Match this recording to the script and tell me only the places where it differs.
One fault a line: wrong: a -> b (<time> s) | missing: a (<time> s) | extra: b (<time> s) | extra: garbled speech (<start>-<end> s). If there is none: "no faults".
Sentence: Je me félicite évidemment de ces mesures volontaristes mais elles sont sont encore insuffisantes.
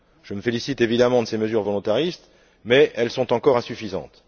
missing: sont (3.3 s)